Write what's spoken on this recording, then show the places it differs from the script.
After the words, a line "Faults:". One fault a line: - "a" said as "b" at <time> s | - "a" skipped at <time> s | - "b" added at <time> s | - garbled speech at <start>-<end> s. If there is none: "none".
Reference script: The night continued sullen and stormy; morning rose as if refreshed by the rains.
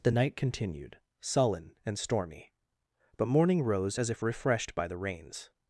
The night continued sullen and stormy; but morning rose as if refreshed by the rains.
Faults:
- "but" added at 3.2 s